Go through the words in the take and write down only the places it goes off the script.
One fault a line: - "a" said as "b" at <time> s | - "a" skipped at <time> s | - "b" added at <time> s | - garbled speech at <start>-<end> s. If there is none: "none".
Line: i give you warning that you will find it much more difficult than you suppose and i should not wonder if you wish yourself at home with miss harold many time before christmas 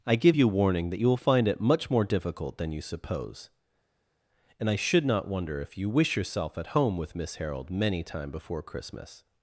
none